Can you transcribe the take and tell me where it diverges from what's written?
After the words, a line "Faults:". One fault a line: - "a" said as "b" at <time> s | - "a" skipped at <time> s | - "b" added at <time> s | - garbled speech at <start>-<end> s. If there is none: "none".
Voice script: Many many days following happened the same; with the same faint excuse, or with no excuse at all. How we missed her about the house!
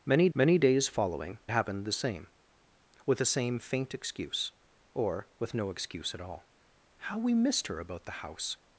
Many many days following happened the same; with the same faint excuse, or with no excuse at all. How we missed her about the house!
Faults:
none